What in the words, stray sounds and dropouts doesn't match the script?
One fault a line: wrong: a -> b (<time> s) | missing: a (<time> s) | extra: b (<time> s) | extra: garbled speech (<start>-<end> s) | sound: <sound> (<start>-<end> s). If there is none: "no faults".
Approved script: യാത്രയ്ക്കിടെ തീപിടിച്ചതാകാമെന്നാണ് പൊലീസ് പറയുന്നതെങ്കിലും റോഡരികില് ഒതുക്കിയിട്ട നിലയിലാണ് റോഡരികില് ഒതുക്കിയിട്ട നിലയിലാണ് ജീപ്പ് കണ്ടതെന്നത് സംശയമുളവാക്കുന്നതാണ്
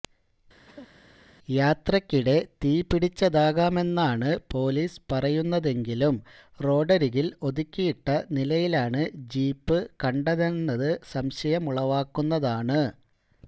sound: cough (0.7-0.9 s)
missing: റോഡരികില് ഒതുക്കിയിട്ട നിലയിലാണ് (9.0 s)